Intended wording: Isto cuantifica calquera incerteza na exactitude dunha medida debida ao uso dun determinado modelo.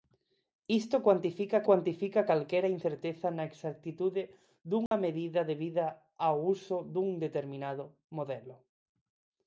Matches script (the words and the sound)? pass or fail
fail